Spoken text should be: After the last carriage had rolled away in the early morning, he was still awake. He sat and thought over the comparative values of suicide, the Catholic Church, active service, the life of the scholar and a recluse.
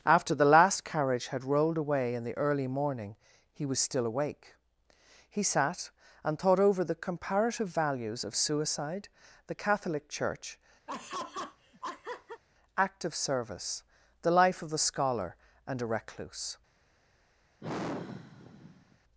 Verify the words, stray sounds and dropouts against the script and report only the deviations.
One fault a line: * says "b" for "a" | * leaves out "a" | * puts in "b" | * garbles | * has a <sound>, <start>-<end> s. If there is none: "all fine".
* has a laugh, 10.9-12.4 s
* has a sigh, 17.6-19.0 s